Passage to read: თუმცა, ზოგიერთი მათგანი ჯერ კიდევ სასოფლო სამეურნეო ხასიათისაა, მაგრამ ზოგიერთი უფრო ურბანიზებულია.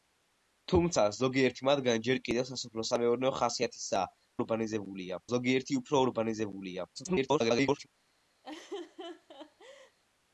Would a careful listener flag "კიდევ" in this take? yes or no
no